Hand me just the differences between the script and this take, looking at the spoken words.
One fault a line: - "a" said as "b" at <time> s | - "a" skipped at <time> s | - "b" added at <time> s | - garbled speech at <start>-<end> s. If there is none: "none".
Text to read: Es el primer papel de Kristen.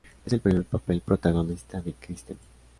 - "protagonista" added at 1.0 s